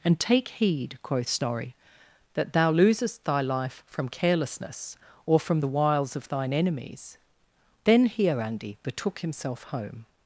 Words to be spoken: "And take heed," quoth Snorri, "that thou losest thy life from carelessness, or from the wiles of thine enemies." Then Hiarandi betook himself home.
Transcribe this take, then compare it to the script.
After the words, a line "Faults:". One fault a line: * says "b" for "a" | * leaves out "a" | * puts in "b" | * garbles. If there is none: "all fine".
"And take heed," quoth Snorri, "that thou losest thy life from carelessness, or from the wiles of thine enemies." Then Hiarandi betook himself home.
Faults:
all fine